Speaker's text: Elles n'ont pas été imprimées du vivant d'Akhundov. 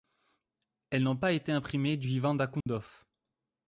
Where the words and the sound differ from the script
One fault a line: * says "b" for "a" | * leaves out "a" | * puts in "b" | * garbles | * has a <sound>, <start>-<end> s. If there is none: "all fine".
* has a dropout, 2.6-2.7 s